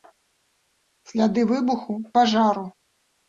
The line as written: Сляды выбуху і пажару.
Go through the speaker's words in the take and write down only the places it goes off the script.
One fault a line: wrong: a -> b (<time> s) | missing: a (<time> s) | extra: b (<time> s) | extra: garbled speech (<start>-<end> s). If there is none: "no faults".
missing: і (2.0 s)